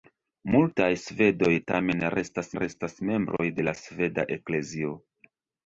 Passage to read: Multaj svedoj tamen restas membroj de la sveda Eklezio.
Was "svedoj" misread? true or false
false